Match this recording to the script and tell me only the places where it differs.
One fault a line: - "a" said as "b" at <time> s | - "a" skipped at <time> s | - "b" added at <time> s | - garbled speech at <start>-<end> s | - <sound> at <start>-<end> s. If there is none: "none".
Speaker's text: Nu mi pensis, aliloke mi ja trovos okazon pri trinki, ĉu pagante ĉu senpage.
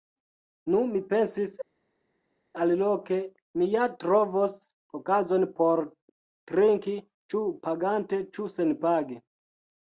- "pri" said as "por" at 5.6 s